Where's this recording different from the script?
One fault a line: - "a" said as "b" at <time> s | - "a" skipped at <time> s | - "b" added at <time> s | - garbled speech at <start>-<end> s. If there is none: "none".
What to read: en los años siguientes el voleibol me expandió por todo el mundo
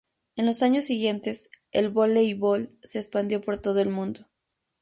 - "me" said as "se" at 2.8 s